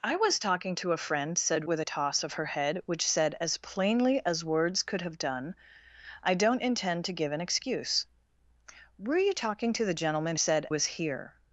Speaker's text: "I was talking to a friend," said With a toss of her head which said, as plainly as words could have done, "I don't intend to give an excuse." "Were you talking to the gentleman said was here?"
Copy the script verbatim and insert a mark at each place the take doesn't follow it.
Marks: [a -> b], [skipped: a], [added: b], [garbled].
"I was talking to a friend," said With a toss of her head which said, as plainly as words could have done, "I don't intend to give an excuse." "Were you talking to the gentleman said was here?"